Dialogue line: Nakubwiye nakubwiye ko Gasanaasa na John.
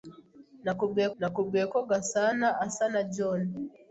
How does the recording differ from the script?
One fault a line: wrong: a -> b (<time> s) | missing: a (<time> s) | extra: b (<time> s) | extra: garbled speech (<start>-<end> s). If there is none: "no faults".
no faults